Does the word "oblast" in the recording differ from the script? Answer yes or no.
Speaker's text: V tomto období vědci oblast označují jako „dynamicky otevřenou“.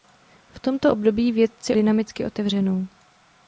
yes